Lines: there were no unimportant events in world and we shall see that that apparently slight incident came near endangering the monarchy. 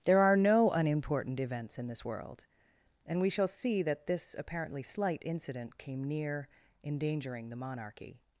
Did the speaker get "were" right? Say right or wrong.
wrong